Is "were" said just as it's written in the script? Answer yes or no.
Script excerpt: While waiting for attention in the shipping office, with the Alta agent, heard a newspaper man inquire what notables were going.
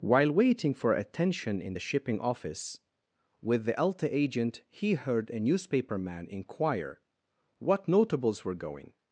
yes